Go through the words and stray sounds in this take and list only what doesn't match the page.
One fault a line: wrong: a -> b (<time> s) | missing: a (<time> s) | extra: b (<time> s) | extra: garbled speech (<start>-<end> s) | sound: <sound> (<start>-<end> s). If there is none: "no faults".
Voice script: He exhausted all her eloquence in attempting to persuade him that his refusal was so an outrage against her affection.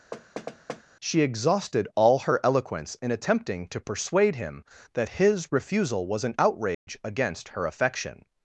sound: thud (0.1-0.8 s)
wrong: He -> She (1.0 s)
missing: so (6.2 s)
sound: dropout (6.7-6.9 s)